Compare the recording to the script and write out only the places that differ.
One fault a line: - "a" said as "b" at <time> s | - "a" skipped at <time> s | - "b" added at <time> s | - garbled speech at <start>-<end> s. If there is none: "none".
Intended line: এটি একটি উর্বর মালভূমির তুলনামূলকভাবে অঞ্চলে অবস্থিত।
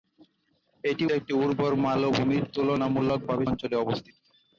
none